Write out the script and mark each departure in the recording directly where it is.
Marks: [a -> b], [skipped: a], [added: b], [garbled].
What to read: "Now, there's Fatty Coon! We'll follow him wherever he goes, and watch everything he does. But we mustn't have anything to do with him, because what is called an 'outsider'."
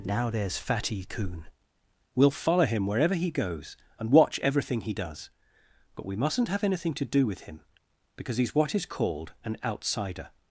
"Now, there's Fatty Coon! We'll follow him wherever he goes, and watch everything he does. But we mustn't have anything to do with him, because [added: he's] what is called an 'outsider'."